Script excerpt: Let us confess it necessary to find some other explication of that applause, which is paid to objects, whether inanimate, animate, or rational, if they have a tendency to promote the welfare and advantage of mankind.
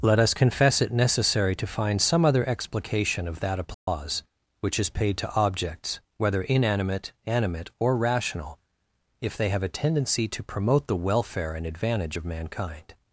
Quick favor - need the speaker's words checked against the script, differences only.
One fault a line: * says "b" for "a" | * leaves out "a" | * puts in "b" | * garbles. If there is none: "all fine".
all fine